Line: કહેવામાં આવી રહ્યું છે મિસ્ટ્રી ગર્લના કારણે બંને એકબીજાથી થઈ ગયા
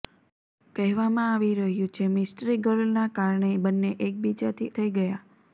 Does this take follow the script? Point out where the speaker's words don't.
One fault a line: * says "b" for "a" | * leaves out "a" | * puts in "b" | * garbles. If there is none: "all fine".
all fine